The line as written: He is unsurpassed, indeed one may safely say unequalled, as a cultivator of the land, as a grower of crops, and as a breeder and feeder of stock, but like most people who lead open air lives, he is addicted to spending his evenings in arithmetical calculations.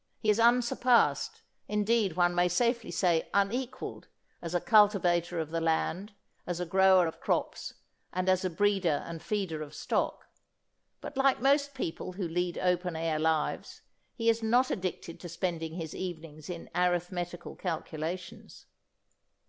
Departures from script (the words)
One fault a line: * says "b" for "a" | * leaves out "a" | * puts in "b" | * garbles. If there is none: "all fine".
* puts in "not"